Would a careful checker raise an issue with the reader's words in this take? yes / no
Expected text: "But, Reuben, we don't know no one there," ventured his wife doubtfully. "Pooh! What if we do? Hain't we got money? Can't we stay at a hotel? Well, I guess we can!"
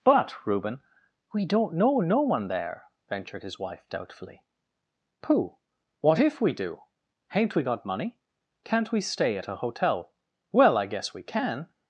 no